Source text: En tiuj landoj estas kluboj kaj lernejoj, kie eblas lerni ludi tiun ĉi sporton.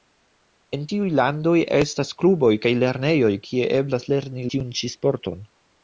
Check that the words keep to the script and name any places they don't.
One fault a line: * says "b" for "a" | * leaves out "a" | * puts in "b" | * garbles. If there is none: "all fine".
* leaves out "ludi"